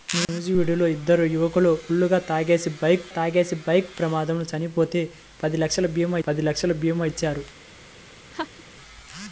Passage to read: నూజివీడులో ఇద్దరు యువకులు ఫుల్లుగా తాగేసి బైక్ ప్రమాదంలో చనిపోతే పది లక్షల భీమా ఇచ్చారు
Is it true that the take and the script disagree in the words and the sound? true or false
true